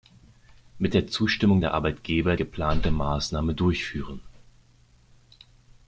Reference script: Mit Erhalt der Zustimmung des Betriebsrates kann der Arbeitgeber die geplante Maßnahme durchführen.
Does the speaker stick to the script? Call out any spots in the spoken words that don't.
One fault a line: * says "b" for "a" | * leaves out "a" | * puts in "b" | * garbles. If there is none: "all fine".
* leaves out "Erhalt"
* leaves out "des Betriebsrates kann"
* leaves out "die"